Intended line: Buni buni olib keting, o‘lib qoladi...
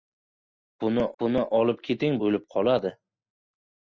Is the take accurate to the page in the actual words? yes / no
yes